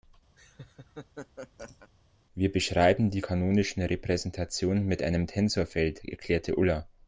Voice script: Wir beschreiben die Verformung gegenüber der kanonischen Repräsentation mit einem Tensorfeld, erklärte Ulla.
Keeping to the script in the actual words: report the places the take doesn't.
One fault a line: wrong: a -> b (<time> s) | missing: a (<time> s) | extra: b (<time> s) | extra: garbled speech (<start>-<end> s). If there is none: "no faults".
missing: Verformung gegenüber der (3.2 s)